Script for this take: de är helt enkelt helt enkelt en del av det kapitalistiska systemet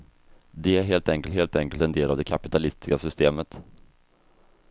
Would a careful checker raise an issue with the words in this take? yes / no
no